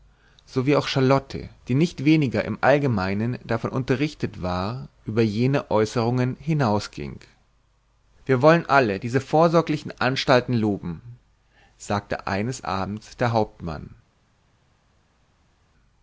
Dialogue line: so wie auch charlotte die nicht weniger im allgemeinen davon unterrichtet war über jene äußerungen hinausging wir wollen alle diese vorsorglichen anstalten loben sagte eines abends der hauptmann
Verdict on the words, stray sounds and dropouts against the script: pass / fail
pass